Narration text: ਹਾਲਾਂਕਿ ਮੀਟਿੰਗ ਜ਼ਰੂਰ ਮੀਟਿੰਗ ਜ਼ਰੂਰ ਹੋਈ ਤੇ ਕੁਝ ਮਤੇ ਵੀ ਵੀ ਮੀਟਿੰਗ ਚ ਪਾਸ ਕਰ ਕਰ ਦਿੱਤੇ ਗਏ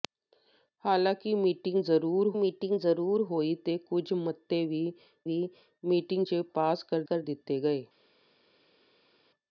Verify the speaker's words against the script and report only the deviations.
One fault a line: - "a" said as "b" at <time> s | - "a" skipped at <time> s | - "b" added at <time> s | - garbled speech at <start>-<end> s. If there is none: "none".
none